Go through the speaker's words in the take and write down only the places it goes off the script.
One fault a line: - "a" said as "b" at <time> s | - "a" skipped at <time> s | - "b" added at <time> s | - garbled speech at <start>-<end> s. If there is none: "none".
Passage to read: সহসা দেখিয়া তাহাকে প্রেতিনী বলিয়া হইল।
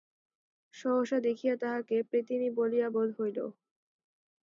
- "বোধ" added at 2.9 s